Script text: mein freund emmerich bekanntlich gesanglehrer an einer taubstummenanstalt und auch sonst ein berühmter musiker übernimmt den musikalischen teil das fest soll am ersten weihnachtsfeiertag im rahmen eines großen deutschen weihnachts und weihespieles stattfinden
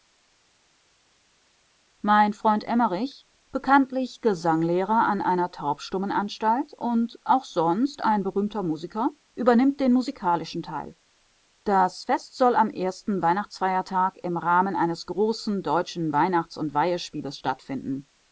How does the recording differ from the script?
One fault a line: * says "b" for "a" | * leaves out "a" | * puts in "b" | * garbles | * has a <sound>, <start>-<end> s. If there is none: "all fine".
all fine